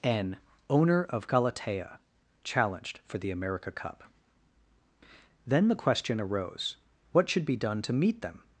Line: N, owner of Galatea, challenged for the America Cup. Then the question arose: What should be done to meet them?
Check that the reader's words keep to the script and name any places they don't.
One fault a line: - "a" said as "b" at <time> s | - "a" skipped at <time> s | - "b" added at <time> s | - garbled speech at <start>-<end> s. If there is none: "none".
none